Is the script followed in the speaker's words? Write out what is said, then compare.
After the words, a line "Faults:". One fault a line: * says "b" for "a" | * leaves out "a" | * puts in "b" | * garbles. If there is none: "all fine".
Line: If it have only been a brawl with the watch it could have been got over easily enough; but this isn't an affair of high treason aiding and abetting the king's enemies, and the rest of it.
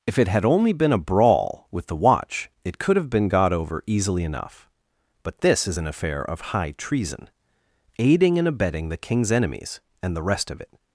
If it had only been a brawl with the watch it could have been got over easily enough; but this is an affair of high treason aiding and abetting the king's enemies, and the rest of it.
Faults:
* says "had" for "have"
* says "is" for "isn't"